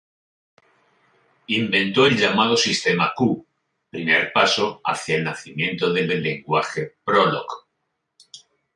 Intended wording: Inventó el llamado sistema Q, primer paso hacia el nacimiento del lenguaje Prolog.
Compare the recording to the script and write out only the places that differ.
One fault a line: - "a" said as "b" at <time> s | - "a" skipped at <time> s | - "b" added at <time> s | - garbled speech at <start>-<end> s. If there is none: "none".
- "del" added at 6.1 s